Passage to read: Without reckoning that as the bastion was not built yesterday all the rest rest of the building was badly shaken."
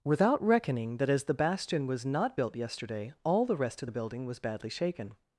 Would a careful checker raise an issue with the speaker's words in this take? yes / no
yes